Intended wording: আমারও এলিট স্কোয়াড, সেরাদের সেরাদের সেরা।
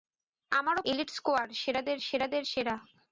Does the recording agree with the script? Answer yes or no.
yes